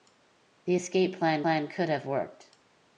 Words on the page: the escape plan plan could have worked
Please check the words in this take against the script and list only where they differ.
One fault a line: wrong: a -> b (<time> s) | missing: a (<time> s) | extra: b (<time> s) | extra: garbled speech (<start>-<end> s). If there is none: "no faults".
no faults